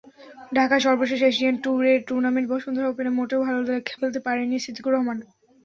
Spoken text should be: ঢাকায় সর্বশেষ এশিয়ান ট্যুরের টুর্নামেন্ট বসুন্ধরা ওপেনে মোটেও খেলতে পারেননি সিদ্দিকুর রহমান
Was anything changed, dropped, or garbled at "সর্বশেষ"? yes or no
no